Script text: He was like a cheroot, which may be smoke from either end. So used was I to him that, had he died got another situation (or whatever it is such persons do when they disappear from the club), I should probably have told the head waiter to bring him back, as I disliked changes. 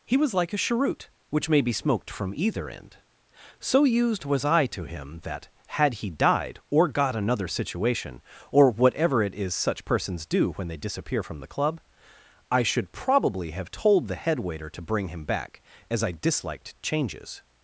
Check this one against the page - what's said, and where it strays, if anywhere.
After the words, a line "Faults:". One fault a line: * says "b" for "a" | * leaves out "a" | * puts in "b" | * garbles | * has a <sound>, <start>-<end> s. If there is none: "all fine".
He was like a cheroot, which may be smoked from either end. So used was I to him that, had he died or got another situation (or whatever it is such persons do when they disappear from the club), I should probably have told the head waiter to bring him back, as I disliked changes.
Faults:
* says "smoked" for "smoke"
* puts in "or"